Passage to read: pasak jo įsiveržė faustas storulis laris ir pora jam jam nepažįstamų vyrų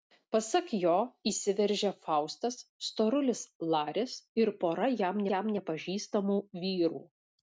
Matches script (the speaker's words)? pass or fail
pass